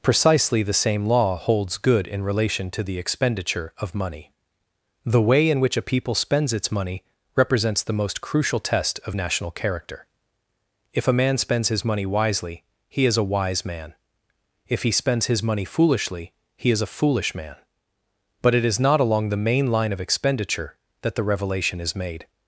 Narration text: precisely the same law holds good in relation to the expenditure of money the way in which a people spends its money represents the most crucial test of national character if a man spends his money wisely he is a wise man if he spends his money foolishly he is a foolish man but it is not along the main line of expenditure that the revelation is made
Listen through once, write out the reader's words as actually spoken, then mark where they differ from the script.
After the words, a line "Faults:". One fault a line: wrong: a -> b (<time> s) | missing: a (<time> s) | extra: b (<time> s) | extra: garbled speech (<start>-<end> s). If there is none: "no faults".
precisely the same law holds good in relation to the expenditure of money the way in which a people spends its money represents the most crucial test of national character if a man spends his money wisely he is a wise man if he spends his money foolishly he is a foolish man but it is not along the main line of expenditure that the revelation is made
Faults:
no faults